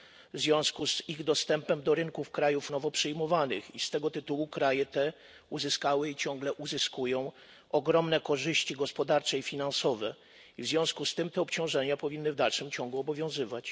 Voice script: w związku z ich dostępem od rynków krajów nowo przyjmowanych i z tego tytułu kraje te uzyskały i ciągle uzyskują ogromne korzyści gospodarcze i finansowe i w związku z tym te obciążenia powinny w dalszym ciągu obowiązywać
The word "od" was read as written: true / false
false